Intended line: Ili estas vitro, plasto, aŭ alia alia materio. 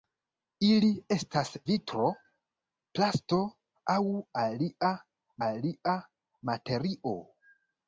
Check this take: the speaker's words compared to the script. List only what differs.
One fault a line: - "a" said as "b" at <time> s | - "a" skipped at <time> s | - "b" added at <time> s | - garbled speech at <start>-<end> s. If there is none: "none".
none